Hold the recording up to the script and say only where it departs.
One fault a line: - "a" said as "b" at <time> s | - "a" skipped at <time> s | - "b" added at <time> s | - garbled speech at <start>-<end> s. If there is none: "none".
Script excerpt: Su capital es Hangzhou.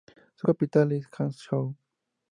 none